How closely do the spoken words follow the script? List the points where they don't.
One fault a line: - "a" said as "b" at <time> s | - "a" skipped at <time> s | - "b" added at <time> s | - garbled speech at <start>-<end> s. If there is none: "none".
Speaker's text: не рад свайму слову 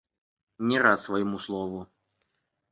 none